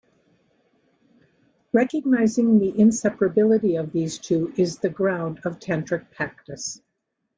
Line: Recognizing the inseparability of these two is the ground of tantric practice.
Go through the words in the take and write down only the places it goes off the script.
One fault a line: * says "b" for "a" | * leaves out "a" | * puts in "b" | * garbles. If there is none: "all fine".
all fine